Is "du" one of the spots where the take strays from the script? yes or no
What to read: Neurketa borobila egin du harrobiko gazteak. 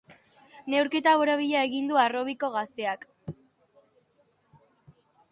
no